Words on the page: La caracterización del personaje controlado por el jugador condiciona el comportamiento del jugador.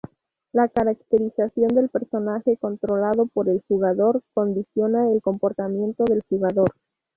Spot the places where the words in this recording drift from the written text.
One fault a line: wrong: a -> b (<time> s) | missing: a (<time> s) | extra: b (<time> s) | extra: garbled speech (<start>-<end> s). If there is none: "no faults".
no faults